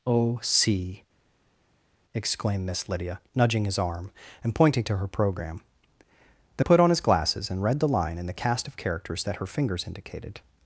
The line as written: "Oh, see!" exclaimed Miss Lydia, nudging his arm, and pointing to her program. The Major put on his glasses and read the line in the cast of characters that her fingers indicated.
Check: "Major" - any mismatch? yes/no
yes